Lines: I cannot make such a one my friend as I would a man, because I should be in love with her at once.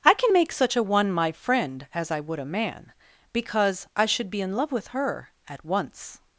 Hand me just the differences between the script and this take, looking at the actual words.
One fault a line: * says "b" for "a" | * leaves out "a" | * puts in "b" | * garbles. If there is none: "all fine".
* says "can" for "cannot"